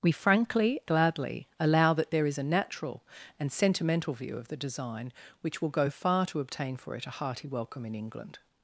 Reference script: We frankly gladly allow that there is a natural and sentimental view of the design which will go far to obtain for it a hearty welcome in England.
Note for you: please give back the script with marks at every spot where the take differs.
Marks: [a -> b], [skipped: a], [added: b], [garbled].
We frankly gladly allow that there is a natural and sentimental view of the design which will go far to obtain for it a hearty welcome in England.